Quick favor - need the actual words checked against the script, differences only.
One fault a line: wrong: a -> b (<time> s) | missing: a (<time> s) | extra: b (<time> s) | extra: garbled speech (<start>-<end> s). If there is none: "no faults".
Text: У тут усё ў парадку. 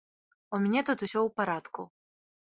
extra: мяне (0.6 s)